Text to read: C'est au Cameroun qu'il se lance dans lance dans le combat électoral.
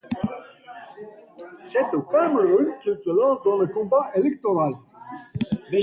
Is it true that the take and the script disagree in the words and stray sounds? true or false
true